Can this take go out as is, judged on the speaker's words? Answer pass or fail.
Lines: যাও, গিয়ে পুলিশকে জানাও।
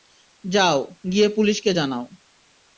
pass